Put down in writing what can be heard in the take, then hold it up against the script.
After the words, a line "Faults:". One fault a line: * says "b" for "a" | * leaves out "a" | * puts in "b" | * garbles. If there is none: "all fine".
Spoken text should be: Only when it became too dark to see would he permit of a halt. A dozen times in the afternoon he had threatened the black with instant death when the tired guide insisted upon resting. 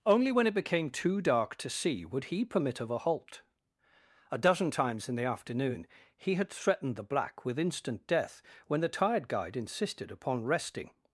Only when it became too dark to see would he permit of a halt. A dozen times in the afternoon he had threatened the black with instant death when the tired guide insisted upon resting.
Faults:
all fine